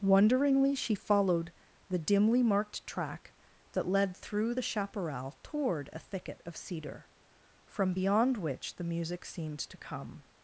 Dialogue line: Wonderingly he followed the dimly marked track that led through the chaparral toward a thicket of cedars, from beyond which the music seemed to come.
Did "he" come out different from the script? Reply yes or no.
yes